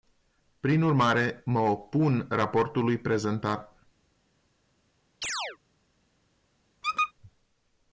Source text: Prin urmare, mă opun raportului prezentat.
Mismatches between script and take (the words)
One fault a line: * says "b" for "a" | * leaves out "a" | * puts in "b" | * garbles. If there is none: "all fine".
all fine